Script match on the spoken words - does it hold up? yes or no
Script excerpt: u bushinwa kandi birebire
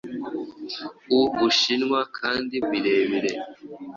yes